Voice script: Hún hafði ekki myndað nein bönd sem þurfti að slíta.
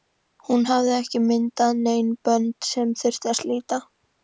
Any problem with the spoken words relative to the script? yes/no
no